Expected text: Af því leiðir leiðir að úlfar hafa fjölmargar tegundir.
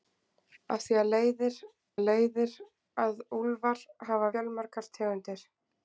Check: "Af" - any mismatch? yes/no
no